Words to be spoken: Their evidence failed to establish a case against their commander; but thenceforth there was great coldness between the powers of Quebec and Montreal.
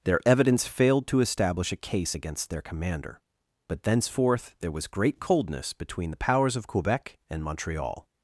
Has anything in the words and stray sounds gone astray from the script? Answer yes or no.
no